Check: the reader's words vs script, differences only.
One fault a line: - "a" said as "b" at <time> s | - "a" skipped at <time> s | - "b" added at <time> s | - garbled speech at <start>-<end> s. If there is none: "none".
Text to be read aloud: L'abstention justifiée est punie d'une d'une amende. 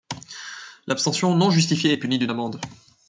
- "non" added at 1.4 s
- "d'une" skipped at 2.3 s